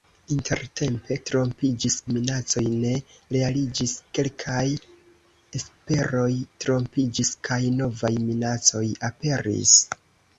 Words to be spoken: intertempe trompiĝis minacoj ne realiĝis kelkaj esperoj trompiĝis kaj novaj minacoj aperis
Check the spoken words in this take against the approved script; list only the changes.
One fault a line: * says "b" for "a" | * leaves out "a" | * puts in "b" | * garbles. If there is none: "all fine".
all fine